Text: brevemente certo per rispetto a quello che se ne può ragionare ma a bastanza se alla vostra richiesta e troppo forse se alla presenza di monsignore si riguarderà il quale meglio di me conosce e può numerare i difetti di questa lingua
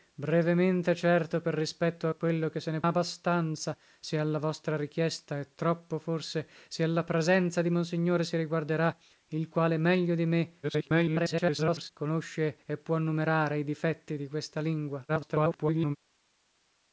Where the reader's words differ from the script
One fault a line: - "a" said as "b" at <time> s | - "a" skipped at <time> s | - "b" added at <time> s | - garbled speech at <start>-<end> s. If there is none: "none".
- "può ragionare ma" skipped at 2.8 s
- garbled speech at 10.6-11.9 s
- garbled speech at 15.1-16.0 s